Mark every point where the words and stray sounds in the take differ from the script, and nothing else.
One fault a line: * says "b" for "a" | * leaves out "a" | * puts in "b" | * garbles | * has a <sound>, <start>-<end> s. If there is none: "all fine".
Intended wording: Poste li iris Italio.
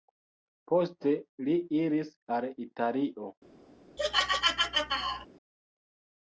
* puts in "al"
* has a laugh, 4.0-5.3 s